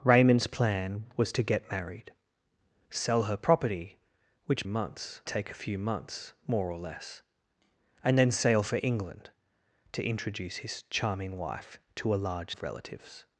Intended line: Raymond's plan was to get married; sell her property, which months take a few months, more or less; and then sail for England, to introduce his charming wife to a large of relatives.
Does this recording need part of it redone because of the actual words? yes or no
no